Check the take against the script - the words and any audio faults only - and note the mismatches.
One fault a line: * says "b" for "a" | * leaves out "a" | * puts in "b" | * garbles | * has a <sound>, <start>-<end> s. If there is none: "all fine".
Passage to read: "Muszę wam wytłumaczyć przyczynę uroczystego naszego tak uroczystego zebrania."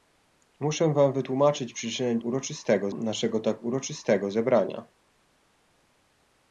all fine